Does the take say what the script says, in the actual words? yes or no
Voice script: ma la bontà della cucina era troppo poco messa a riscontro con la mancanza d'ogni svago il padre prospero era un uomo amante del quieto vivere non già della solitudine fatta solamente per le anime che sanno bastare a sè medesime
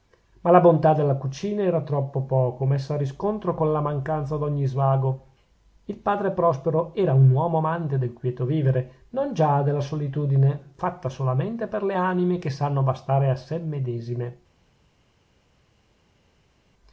yes